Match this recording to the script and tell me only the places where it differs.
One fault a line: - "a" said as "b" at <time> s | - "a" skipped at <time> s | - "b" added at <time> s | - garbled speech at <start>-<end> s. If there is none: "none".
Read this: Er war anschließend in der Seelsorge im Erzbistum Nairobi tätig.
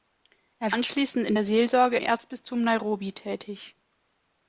- "war" skipped at 0.7 s
- "im" skipped at 2.0 s